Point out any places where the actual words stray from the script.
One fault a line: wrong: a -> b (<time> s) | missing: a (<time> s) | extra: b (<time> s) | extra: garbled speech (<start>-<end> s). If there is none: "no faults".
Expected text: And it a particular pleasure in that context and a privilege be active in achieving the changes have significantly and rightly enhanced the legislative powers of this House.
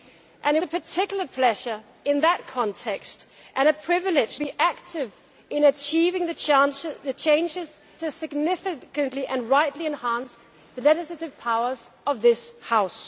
no faults